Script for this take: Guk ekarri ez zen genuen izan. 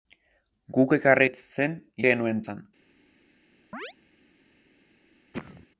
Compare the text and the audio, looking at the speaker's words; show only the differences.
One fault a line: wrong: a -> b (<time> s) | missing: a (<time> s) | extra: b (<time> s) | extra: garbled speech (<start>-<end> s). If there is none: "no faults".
no faults